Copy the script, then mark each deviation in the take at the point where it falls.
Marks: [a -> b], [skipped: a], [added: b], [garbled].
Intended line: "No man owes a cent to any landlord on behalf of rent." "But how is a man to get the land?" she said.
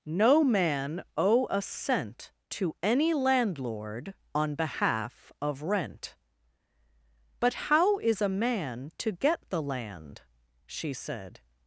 "No man [owes -> owe] a cent to any landlord on behalf of rent." "But how is a man to get the land?" she said.